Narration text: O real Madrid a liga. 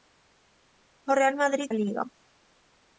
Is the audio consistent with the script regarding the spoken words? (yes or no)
yes